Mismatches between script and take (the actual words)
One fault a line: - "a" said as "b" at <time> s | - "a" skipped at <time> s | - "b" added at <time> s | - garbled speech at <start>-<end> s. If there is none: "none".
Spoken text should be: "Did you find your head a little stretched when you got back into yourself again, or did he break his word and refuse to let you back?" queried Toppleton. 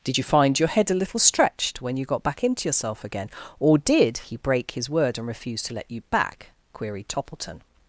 none